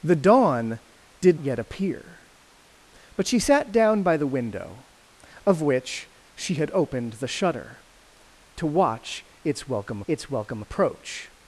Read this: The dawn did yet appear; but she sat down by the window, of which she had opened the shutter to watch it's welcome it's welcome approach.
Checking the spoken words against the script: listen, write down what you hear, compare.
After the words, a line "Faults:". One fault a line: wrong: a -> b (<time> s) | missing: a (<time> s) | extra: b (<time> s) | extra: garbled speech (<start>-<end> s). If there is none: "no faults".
The dawn did yet appear; but she sat down by the window, of which she had opened the shutter to watch it's welcome it's welcome approach.
Faults:
no faults